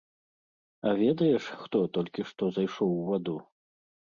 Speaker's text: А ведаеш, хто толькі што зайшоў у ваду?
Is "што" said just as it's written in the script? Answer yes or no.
yes